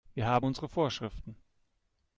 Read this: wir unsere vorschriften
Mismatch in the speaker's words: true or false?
true